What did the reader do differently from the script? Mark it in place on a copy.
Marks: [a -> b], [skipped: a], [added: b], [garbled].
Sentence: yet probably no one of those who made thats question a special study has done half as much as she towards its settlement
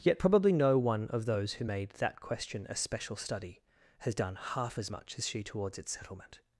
yet probably no one of those who made [thats -> that] question a special study has done half as much as she towards its settlement